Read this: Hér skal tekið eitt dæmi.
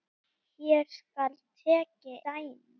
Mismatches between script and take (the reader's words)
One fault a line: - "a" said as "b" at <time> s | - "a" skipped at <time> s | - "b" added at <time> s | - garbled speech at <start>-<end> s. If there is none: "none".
- "eitt" skipped at 2.2 s